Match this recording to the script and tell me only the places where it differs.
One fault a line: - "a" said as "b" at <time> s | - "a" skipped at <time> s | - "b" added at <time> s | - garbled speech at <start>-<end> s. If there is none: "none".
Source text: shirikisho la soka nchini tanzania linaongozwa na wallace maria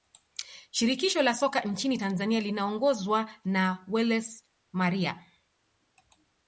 none